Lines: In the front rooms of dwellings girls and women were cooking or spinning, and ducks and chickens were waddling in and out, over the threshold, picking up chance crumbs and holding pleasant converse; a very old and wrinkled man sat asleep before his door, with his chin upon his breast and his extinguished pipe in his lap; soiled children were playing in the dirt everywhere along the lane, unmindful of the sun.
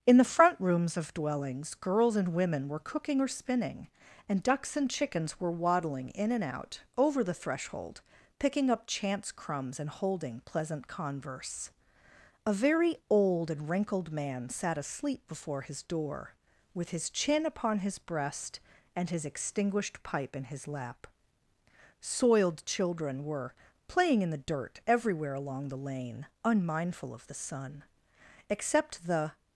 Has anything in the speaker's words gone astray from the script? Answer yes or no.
yes